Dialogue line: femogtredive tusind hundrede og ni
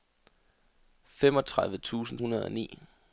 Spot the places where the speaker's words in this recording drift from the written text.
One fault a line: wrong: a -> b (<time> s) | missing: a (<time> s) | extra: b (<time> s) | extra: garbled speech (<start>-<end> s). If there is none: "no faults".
no faults